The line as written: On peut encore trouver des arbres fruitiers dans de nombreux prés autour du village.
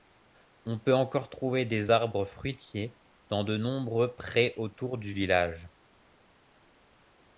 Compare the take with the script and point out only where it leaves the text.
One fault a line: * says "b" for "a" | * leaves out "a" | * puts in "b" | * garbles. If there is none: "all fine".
all fine